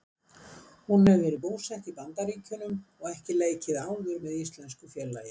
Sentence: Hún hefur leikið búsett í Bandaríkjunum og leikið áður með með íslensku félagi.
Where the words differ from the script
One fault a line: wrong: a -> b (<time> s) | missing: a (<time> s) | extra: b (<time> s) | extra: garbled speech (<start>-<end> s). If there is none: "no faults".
wrong: leikið -> verið (1.2 s)
extra: ekki (3.1 s)
missing: með (4.3 s)